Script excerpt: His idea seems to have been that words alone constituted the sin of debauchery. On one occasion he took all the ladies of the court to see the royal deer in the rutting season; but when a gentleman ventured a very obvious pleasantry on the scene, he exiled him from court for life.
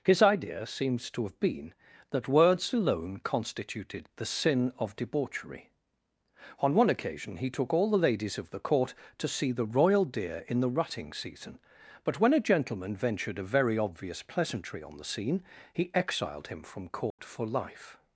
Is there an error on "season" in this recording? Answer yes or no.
no